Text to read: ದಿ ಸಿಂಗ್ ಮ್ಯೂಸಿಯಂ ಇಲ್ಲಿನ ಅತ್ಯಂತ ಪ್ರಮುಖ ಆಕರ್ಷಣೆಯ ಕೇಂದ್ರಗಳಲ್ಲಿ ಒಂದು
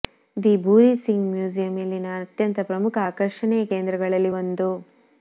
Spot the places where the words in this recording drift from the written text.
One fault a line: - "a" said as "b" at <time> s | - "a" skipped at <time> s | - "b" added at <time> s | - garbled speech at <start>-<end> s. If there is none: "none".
- "ಭೂರಿ" added at 0.6 s